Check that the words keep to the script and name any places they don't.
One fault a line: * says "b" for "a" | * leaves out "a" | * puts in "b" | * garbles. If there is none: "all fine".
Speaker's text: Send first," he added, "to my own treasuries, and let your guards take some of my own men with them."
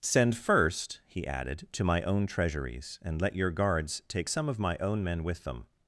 all fine